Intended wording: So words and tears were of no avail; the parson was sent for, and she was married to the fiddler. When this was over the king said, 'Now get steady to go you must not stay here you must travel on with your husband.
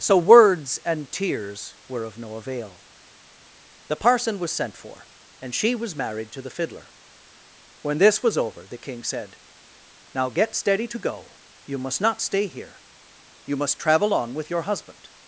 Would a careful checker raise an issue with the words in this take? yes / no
no